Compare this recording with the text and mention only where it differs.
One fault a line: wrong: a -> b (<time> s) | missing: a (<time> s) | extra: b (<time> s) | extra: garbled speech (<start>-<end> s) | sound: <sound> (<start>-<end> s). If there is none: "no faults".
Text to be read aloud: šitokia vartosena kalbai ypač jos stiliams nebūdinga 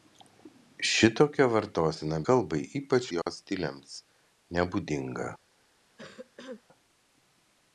sound: dropout (3.2-3.3 s)
sound: cough (6.0-6.6 s)